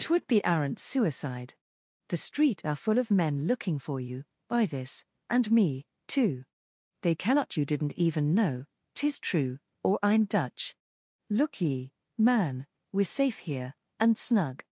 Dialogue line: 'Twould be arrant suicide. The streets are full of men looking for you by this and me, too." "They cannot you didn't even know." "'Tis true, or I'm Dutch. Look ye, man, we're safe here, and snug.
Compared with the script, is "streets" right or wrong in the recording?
wrong